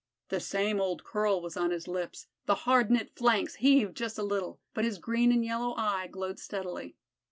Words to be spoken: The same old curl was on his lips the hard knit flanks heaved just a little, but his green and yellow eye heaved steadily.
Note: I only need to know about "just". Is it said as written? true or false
true